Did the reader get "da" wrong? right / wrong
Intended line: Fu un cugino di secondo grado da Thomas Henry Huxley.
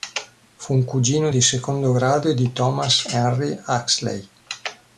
wrong